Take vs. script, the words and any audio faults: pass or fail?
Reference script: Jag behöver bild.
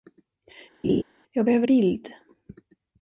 fail